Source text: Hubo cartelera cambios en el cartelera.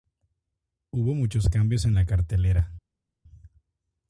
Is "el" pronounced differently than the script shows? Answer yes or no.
yes